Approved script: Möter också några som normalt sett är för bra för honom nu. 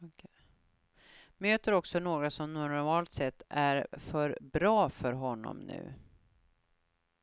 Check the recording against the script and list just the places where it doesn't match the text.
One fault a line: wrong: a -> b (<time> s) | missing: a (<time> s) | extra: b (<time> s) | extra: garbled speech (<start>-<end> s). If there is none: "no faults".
no faults